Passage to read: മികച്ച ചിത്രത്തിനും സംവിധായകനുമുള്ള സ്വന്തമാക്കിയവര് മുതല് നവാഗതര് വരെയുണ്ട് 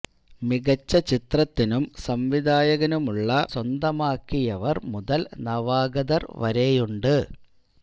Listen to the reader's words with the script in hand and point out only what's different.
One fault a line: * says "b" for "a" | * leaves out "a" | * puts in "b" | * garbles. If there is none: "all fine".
all fine